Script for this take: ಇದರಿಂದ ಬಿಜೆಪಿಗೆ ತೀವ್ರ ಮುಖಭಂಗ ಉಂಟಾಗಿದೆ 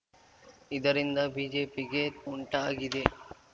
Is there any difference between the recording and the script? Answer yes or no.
yes